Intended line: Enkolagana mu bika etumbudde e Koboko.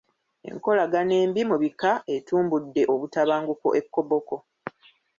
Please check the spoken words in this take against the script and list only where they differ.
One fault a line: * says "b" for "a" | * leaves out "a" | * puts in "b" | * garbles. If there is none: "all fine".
* puts in "embi"
* puts in "obutabanguko"